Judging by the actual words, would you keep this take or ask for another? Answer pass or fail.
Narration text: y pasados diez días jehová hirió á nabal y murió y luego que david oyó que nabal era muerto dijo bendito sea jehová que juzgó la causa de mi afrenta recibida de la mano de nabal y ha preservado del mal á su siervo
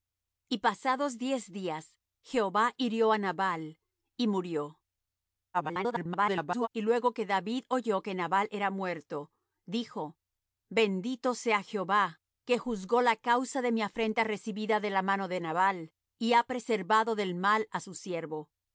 fail